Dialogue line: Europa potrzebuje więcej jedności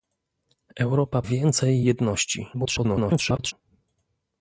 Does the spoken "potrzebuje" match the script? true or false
false